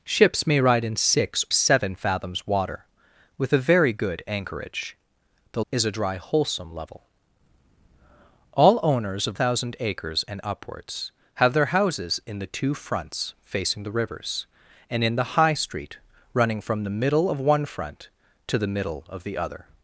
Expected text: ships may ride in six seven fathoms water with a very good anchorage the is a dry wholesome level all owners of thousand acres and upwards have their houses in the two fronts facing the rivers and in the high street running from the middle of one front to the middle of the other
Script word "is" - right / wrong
right